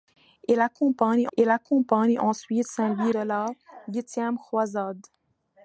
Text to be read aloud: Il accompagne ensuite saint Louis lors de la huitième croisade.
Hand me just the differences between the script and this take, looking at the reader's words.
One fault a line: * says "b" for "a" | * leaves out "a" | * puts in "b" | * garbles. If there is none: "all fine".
* puts in "il accompagne"
* leaves out "lors"